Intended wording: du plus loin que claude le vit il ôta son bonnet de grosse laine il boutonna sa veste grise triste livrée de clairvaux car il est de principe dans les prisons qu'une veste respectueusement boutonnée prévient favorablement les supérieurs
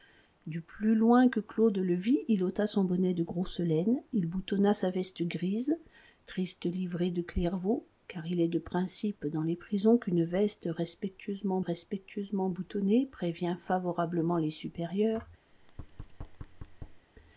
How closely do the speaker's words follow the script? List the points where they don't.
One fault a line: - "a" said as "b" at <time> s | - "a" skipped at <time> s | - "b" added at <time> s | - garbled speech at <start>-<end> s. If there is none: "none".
- "respectueusement" added at 11.6 s